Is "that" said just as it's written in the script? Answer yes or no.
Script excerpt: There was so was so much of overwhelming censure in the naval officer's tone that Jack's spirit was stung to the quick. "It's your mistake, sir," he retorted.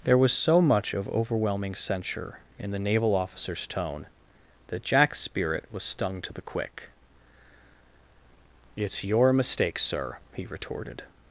yes